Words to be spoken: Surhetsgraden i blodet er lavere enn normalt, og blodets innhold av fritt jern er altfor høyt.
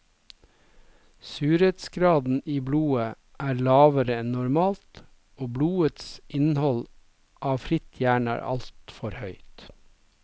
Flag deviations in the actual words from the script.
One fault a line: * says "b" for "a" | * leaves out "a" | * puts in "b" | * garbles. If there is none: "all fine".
all fine